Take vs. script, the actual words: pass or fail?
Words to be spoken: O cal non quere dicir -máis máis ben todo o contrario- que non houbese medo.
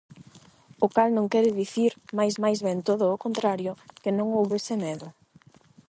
pass